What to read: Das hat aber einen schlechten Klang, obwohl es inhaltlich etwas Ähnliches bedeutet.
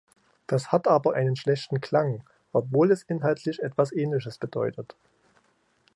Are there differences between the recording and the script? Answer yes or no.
no